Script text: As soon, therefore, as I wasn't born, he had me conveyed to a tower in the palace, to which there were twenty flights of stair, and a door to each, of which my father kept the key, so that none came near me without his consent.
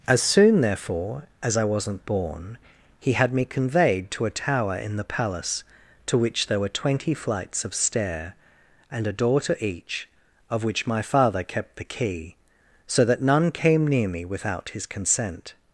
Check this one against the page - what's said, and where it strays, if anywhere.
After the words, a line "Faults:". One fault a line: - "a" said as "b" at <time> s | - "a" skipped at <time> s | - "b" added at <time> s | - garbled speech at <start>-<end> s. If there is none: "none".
As soon, therefore, as I wasn't born, he had me conveyed to a tower in the palace, to which there were twenty flights of stair, and a door to each, of which my father kept the key, so that none came near me without his consent.
Faults:
none